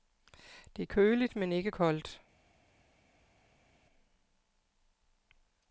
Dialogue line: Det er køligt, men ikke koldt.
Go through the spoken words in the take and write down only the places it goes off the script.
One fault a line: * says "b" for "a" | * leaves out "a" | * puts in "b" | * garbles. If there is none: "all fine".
all fine